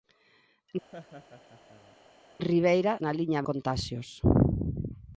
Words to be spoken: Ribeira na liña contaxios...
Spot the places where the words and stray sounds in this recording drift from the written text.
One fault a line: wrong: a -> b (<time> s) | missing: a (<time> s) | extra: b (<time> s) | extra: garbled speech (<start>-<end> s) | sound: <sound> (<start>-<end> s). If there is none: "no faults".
sound: laugh (0.9-2.0 s)